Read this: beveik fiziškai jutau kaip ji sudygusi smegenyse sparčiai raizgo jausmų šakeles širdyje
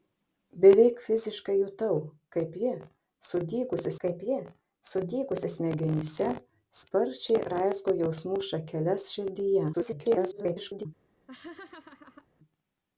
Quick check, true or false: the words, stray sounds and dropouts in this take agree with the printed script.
false